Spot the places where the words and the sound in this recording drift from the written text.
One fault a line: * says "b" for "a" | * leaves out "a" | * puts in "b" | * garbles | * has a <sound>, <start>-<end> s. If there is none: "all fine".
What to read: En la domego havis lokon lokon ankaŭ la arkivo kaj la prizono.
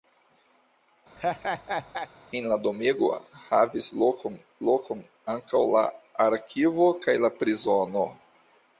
* has a laugh, 1.2-2.1 s